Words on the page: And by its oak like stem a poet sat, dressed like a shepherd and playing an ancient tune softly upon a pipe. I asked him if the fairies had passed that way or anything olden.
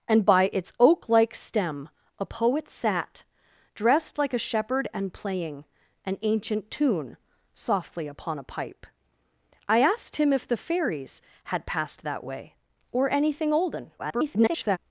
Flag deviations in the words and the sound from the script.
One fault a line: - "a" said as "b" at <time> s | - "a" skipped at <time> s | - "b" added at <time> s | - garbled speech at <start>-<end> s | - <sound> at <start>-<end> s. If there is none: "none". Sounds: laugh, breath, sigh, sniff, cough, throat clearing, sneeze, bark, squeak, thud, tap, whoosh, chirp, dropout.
- garbled speech at 14.0-14.8 s